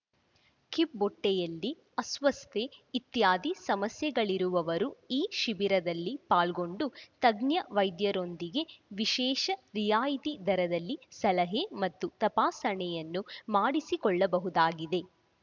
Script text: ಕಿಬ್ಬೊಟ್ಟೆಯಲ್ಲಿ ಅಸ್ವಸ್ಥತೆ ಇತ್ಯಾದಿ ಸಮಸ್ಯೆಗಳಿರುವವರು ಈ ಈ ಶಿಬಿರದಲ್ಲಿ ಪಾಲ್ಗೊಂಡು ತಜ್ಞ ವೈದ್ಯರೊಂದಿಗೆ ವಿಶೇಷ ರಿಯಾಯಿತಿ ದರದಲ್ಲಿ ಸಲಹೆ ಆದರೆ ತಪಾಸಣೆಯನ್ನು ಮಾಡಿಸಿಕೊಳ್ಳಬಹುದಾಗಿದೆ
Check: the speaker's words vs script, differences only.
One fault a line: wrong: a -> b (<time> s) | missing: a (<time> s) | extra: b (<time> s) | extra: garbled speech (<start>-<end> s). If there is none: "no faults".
missing: ಈ (5.3 s)
wrong: ಆದರೆ -> ಮತ್ತು (11.8 s)